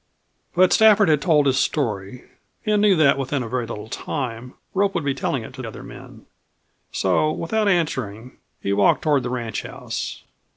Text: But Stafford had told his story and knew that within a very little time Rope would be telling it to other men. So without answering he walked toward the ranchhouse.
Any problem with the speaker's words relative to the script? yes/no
no